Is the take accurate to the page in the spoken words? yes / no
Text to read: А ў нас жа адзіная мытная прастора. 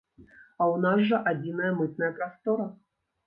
yes